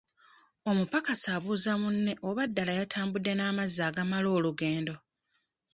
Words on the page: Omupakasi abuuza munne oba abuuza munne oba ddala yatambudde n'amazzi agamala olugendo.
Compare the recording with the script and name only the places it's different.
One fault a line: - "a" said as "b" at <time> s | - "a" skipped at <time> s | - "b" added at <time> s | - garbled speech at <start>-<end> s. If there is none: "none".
- "abuuza munne oba" skipped at 2.4 s